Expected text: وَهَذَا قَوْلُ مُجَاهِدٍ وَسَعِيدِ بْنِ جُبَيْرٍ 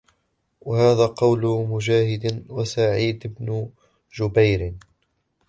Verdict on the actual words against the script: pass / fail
pass